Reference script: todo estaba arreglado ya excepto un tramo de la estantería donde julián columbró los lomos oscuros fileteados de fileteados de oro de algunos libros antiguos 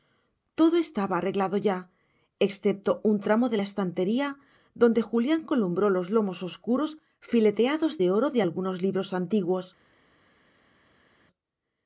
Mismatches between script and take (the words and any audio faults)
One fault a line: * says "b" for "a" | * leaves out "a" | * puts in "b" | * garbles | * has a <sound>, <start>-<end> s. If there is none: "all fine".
* leaves out "fileteados de"